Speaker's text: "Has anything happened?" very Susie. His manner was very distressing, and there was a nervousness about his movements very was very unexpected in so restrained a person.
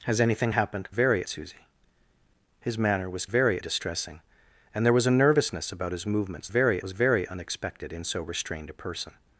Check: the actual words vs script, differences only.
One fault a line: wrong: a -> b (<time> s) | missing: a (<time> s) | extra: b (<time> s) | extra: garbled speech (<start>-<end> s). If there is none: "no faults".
no faults